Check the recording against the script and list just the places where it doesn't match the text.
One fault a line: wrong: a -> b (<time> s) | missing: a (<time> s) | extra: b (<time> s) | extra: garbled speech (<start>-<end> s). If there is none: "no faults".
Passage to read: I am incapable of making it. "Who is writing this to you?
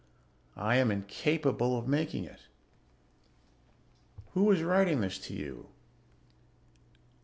no faults